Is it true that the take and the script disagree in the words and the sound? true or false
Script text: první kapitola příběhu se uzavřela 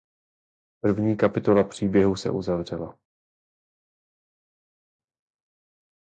false